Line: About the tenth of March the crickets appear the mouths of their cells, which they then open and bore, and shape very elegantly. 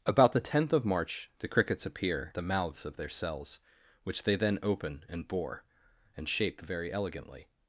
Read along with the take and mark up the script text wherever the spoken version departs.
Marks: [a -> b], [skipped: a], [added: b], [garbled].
About the tenth of March the crickets appear the mouths of their cells, which they then open and bore, and shape very elegantly.